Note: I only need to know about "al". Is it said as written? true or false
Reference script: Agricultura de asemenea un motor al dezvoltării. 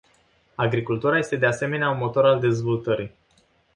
true